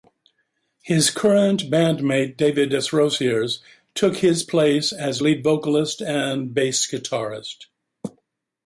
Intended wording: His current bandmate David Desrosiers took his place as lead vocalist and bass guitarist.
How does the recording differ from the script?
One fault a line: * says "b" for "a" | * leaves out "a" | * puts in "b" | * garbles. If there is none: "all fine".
all fine